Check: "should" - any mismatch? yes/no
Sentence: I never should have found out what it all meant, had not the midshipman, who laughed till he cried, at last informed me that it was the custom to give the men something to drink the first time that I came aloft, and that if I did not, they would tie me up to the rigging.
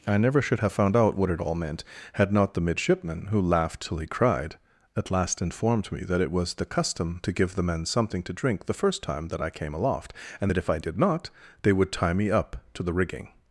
no